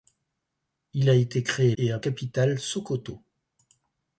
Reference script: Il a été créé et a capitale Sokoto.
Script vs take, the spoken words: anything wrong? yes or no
no